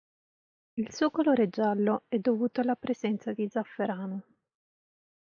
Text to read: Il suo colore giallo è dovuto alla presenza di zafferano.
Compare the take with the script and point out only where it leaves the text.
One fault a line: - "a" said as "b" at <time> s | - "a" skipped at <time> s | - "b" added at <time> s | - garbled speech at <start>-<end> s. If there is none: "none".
none